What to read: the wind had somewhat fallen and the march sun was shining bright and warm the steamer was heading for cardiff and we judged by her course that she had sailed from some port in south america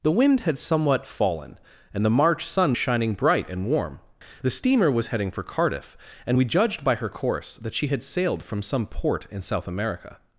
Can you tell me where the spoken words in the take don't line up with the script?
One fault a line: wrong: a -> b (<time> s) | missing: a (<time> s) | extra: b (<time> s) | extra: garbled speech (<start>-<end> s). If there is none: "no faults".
missing: was (2.7 s)